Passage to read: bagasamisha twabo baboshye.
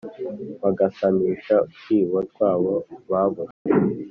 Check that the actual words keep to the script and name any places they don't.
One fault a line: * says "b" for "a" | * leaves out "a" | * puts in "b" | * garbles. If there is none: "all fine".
* puts in "utwibo"